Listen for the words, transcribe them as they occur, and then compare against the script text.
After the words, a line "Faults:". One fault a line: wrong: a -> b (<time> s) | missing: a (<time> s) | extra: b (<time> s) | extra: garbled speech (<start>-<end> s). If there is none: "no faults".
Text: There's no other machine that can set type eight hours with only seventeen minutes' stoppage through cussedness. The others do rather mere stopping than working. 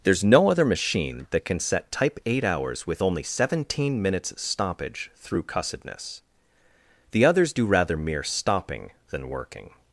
There's no other machine that can set type eight hours with only seventeen minutes' stoppage through cussedness. The others do rather mere stopping than working.
Faults:
no faults